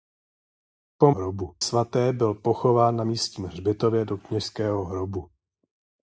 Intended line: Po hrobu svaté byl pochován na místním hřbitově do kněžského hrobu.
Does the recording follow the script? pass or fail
pass